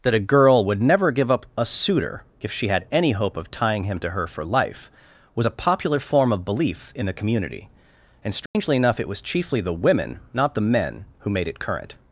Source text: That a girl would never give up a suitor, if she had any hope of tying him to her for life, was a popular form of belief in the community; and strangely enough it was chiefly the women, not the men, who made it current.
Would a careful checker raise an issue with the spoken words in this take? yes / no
no